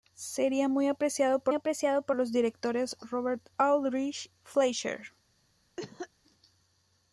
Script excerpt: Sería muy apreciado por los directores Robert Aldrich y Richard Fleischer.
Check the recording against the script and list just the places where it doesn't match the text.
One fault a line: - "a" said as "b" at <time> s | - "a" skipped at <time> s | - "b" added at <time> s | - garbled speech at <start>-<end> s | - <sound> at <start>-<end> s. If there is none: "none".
- "apreciado por" added at 1.5 s
- "y Richard" skipped at 4.3 s
- cough at 5.8-6.1 s